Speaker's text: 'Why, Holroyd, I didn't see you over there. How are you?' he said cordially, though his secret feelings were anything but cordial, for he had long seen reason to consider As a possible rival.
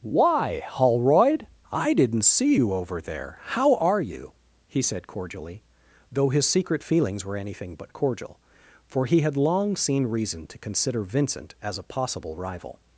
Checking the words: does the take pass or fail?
fail